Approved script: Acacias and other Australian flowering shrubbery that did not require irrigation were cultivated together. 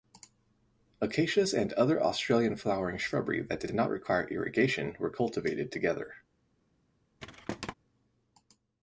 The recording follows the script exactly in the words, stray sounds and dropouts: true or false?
false